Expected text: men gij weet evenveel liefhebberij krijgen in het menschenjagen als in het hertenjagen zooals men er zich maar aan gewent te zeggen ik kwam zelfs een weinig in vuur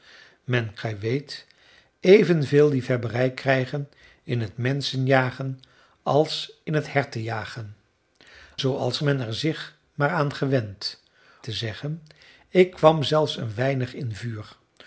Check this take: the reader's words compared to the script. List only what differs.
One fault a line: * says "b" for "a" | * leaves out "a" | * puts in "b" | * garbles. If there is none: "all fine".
all fine